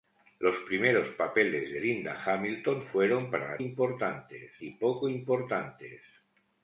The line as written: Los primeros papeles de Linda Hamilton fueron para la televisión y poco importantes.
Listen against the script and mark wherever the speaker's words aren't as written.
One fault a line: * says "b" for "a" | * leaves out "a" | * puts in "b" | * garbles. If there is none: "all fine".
* says "importantes" for "televisión"